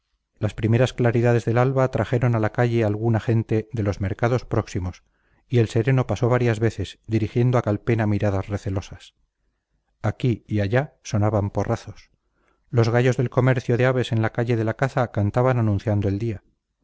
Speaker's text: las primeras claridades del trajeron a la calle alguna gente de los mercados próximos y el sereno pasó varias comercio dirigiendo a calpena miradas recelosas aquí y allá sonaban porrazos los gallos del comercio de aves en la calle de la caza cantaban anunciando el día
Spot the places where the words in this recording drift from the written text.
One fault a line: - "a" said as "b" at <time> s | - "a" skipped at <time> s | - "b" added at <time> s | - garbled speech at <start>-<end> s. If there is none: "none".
- "alba" added at 1.6 s
- "comercio" said as "veces" at 6.6 s